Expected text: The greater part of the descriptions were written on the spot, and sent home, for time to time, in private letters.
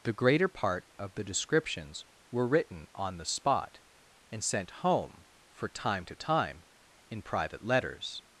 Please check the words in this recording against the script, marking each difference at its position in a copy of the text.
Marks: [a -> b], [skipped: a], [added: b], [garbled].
The greater part of the descriptions were written on the spot, and sent home, for time to time, in private letters.